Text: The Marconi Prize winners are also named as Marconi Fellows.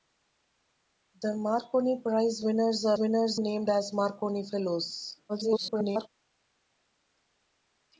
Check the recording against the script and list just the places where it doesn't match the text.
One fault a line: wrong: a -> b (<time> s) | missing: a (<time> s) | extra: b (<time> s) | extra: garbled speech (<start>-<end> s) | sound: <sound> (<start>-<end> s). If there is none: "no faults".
wrong: also -> winners (3.0 s)
extra: garbled speech (5.3-6.1 s)